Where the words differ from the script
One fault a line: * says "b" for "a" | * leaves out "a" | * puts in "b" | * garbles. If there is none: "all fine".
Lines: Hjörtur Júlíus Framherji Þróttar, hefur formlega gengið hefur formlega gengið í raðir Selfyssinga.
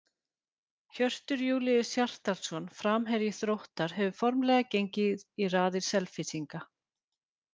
* puts in "Hjartarson"
* leaves out "hefur formlega gengið"